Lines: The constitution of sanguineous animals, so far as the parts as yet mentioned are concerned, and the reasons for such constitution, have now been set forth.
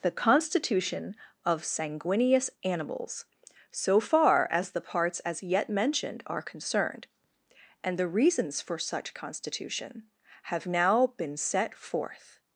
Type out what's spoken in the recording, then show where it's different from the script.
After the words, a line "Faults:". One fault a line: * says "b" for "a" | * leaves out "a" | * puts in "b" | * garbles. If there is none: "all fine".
The constitution of sanguineous animals, so far as the parts as yet mentioned are concerned, and the reasons for such constitution, have now been set forth.
Faults:
all fine